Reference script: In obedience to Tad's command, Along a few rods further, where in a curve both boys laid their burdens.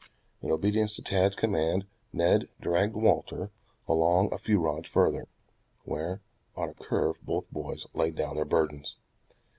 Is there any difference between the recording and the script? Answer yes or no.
yes